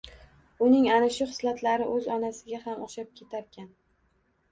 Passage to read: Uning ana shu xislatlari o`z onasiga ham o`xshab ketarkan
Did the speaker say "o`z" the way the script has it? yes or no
yes